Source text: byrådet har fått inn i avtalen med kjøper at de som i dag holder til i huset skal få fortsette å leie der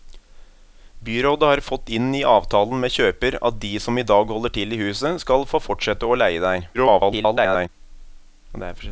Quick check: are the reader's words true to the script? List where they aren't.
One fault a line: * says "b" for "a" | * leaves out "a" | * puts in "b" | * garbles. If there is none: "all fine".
* garbles